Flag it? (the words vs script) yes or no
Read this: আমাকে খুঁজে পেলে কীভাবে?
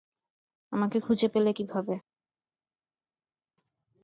no